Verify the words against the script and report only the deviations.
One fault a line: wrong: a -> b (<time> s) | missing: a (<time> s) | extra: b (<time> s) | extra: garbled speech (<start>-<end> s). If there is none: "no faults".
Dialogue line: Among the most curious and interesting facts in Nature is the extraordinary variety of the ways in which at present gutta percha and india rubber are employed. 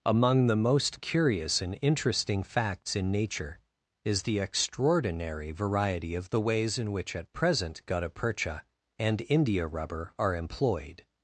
no faults